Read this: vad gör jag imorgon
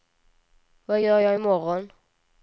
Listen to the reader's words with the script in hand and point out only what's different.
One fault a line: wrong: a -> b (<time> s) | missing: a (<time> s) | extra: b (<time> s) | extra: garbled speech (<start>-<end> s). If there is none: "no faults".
no faults